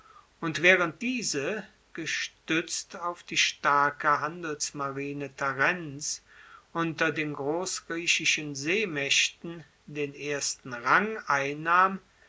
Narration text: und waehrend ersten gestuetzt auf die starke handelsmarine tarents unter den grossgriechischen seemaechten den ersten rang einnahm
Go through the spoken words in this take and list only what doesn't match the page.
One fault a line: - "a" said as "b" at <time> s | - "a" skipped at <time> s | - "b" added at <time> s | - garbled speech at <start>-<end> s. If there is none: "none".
- "ersten" said as "diese" at 1.0 s